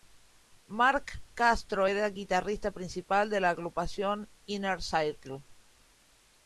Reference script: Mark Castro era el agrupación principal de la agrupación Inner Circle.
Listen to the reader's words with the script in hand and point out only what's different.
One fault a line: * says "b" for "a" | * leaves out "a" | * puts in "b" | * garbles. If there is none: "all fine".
* says "guitarrista" for "agrupación"